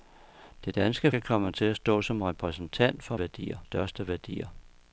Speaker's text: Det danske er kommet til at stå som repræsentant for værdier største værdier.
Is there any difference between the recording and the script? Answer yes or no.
no